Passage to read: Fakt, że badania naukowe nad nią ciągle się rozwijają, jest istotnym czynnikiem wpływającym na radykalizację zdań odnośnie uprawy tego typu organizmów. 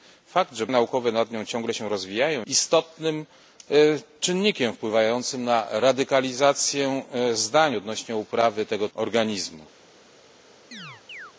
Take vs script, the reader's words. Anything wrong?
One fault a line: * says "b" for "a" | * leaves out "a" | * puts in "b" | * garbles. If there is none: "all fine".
* leaves out "badania"
* leaves out "jest"
* leaves out "typu"